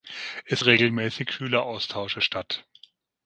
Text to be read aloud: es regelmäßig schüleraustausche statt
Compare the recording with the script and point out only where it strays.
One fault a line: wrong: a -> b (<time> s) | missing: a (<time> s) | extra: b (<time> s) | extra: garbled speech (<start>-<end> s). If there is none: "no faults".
no faults